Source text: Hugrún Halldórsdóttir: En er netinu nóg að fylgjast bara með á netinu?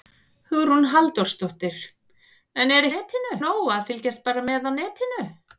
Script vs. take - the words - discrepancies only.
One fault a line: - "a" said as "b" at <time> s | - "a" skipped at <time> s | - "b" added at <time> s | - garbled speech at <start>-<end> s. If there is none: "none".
none